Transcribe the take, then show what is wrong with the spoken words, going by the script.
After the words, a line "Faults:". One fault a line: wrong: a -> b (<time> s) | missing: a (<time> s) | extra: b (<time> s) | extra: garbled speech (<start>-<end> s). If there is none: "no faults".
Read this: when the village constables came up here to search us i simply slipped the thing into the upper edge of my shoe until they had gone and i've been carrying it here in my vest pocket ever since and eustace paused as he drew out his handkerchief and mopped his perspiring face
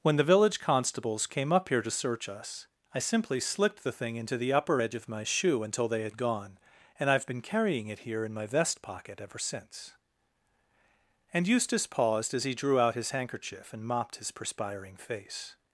when the village constables came up here to search us i simply slipped the thing into the upper edge of my shoe until they had gone and i've been carrying it here in my vest pocket ever since and eustace paused as he drew out his handkerchief and mopped his perspiring face
Faults:
no faults